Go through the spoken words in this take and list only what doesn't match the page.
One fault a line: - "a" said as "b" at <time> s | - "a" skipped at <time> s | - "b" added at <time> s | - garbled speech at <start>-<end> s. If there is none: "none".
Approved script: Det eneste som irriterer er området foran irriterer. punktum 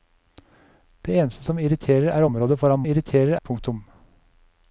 none